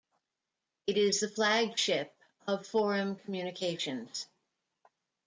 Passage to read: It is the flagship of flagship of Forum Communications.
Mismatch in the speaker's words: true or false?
true